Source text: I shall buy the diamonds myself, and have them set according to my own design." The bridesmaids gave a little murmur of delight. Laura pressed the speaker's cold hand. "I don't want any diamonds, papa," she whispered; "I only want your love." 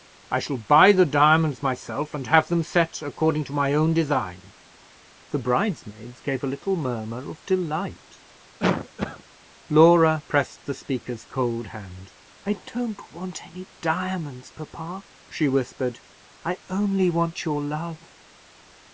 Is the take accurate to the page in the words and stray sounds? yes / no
no